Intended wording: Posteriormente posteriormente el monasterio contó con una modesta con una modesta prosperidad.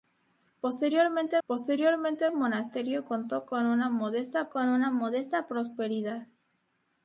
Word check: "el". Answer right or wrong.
right